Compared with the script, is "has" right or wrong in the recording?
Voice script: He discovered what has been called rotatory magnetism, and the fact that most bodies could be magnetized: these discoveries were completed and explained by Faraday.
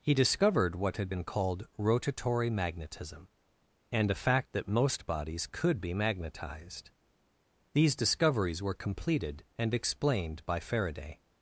wrong